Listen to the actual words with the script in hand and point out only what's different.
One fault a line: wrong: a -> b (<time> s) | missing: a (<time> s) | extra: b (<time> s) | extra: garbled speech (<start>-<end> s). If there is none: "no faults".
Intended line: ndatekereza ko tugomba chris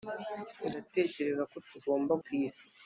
no faults